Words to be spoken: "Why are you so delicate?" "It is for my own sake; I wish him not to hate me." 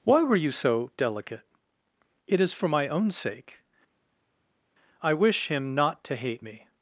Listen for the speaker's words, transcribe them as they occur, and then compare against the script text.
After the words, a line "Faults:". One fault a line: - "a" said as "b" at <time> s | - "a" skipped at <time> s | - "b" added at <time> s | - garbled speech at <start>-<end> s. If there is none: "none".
"Why were you so delicate?" "It is for my own sake; I wish him not to hate me."
Faults:
- "are" said as "were" at 0.2 s